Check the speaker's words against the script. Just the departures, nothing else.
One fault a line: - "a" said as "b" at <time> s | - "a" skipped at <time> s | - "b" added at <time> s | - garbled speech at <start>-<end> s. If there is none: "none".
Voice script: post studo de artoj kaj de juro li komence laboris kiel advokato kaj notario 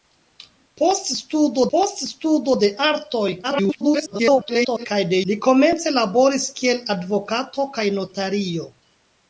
- "post studo" added at 1.7 s
- garbled speech at 3.4-4.9 s
- "juro" skipped at 5.2 s